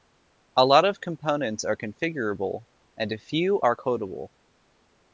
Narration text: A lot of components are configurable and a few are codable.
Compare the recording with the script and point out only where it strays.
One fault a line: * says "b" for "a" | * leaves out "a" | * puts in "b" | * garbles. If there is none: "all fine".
all fine